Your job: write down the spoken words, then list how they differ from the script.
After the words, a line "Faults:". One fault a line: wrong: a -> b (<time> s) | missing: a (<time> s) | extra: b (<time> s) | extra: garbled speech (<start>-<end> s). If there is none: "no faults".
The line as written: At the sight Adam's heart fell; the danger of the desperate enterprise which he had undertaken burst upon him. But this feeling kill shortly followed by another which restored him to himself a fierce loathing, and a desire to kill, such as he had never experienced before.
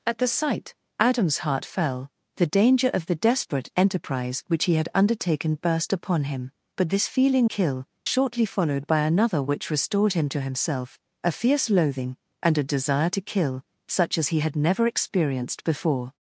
At the sight Adam's heart fell; the danger of the desperate enterprise which he had undertaken burst upon him. But this feeling kill shortly followed by another which restored him to himself a fierce loathing, and a desire to kill, such as he had never experienced before.
Faults:
no faults